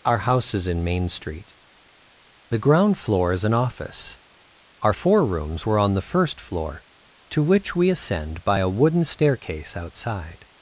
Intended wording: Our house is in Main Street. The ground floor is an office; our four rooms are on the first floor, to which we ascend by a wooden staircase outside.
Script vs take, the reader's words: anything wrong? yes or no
yes